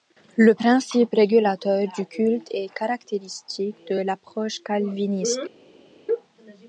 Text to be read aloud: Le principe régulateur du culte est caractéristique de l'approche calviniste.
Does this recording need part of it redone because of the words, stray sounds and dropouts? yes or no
no